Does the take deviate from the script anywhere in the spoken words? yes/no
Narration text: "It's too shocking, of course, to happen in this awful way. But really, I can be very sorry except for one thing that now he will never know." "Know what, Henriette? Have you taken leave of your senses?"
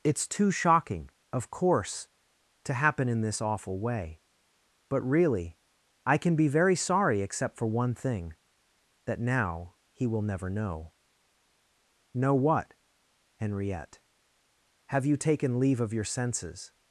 no